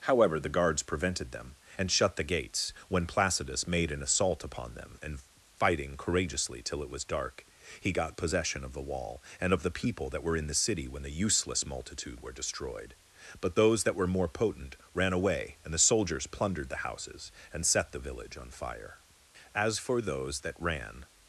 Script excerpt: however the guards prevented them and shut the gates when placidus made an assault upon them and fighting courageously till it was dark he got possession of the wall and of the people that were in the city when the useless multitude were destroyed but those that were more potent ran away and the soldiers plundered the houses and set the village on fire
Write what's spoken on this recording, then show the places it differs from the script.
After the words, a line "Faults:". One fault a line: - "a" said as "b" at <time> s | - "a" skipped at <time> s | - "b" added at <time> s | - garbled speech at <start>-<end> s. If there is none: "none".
however the guards prevented them and shut the gates when placidus made an assault upon them and fighting courageously till it was dark he got possession of the wall and of the people that were in the city when the useless multitude were destroyed but those that were more potent ran away and the soldiers plundered the houses and set the village on fire as for those that ran
Faults:
- "as for those that ran" added at 19.5 s